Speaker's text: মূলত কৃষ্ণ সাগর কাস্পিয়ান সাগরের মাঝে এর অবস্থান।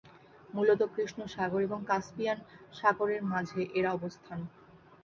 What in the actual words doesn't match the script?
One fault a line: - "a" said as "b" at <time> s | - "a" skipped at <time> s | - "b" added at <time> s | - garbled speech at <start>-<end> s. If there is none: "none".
- "এবং" added at 1.6 s